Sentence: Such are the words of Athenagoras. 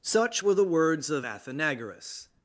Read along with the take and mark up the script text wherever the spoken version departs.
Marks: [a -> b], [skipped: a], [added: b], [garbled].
Such [are -> were] the words of Athenagoras.